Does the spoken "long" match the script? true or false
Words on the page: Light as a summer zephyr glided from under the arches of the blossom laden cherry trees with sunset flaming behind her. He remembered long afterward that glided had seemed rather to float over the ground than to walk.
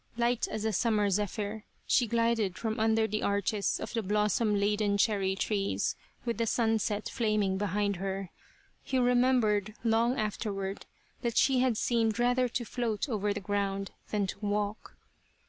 true